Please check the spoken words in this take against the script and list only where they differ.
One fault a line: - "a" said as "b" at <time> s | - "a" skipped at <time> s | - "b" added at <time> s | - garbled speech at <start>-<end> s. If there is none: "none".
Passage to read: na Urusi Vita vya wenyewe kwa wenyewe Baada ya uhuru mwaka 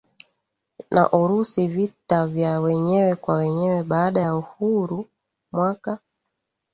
none